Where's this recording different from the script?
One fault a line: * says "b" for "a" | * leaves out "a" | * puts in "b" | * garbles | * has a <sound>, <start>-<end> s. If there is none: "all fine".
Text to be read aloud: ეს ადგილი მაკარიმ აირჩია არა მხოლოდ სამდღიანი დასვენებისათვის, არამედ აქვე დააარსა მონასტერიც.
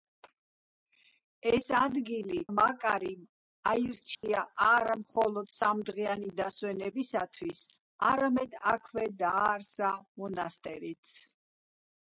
* has a dropout, 4.1-4.2 s